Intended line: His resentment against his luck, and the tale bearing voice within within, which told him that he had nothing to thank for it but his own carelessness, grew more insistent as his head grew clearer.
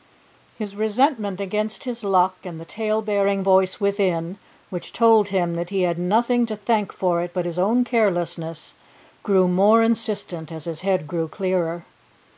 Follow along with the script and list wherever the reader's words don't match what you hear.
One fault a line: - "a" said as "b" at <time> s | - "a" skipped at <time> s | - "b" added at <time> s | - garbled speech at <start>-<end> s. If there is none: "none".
- "within" skipped at 4.4 s